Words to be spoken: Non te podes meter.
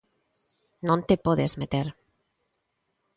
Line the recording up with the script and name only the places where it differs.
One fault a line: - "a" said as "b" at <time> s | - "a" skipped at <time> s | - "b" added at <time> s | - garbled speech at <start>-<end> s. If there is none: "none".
none